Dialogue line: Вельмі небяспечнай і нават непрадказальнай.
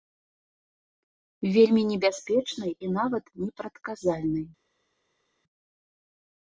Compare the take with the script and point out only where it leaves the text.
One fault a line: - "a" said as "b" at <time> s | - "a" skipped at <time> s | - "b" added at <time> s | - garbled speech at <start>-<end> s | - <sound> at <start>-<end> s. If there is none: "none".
none